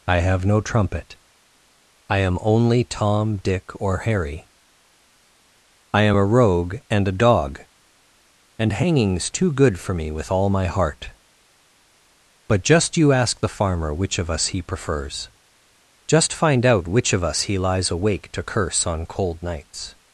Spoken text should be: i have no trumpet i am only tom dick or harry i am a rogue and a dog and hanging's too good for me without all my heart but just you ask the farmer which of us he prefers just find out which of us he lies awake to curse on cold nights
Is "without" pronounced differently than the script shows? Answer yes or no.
yes